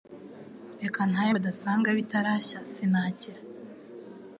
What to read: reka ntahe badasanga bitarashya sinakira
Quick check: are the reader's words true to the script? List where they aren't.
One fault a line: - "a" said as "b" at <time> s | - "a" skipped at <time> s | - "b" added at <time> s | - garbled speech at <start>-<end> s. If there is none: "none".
none